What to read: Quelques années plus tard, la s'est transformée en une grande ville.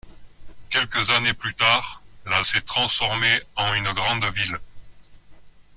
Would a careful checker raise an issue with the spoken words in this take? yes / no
no